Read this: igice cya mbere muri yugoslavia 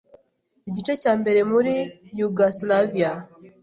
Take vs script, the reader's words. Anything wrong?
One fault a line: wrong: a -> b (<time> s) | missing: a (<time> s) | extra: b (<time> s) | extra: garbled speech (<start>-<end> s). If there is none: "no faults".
no faults